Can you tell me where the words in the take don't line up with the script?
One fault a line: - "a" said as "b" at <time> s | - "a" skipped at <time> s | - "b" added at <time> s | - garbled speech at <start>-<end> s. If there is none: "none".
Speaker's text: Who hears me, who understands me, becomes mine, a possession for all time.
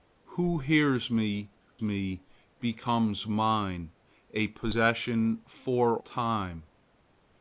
- "who understands" skipped at 1.5 s
- "all" skipped at 6.0 s